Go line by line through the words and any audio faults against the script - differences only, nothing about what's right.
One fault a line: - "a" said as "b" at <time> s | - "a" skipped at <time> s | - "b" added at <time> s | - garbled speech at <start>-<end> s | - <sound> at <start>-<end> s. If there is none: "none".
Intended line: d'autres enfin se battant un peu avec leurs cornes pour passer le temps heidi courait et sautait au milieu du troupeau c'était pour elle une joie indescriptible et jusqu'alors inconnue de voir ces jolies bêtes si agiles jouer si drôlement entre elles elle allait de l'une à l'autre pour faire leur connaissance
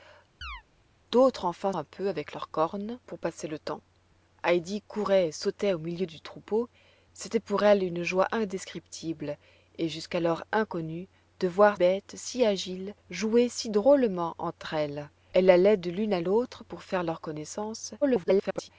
- chirp at 0.4-0.6 s
- "se battant" skipped at 1.7 s
- "ces jolies" skipped at 11.8 s
- garbled speech at 18.0-18.7 s